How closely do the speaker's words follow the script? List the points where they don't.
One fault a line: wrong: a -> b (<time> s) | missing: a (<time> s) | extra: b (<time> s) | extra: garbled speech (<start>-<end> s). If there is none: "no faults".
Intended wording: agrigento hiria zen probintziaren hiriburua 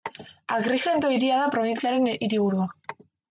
wrong: zen -> da (1.4 s)